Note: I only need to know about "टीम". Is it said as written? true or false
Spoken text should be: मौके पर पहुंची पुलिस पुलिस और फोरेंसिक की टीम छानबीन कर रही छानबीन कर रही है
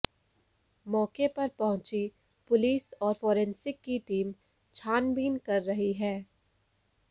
true